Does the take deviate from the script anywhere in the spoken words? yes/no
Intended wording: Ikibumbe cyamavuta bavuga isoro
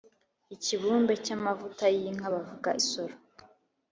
yes